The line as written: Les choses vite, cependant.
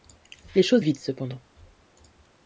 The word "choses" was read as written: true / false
true